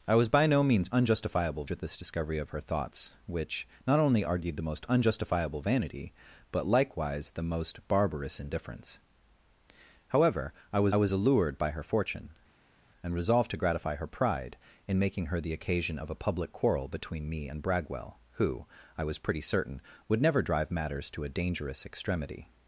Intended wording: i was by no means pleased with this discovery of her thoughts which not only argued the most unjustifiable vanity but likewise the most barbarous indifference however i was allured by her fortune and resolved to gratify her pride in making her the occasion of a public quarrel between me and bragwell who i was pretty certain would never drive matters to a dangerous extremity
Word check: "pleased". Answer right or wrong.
wrong